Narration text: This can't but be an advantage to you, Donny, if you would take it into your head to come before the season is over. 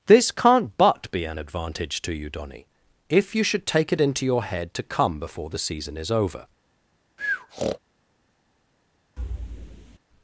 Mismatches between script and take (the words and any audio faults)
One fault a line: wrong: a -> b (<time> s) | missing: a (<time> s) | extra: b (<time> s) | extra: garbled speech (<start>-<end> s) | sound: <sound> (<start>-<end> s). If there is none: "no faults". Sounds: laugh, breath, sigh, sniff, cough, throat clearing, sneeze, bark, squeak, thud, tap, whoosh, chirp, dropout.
wrong: would -> should (3.4 s)
sound: breath (7.2-7.8 s)
sound: thud (9.2-10.0 s)